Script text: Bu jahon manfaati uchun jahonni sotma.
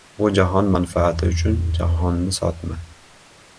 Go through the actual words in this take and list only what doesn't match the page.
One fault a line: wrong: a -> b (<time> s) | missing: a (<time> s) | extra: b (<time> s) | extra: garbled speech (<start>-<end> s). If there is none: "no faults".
no faults